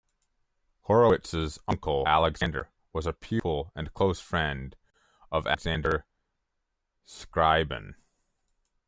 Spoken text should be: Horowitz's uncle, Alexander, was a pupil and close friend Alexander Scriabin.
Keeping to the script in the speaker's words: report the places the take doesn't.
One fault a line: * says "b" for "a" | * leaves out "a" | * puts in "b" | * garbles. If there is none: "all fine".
* puts in "of"